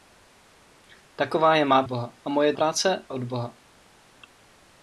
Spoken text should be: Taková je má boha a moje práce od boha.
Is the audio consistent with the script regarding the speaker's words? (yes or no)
yes